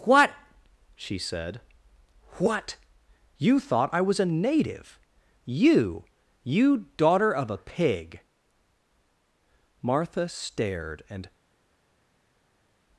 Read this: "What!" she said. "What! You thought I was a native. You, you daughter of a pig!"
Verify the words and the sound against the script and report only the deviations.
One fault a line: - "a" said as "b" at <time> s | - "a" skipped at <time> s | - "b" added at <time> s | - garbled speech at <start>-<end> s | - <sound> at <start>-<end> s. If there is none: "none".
- "Martha stared and" added at 9.8 s